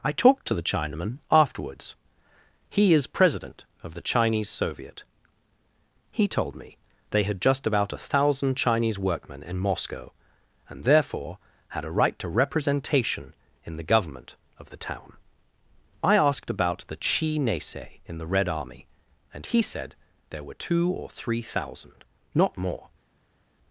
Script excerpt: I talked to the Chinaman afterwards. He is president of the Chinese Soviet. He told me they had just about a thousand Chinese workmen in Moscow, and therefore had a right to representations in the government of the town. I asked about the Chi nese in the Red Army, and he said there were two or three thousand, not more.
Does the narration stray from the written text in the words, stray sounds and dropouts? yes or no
yes